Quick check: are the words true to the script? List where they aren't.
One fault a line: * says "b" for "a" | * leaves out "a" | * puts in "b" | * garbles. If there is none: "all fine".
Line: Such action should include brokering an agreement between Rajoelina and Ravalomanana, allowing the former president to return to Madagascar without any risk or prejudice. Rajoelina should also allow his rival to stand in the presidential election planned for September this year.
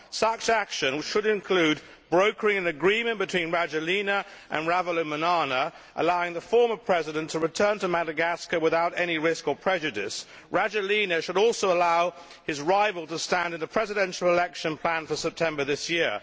all fine